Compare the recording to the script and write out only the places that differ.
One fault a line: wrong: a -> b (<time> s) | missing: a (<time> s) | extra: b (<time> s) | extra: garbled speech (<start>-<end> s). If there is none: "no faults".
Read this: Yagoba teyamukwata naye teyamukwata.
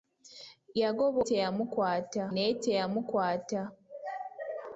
no faults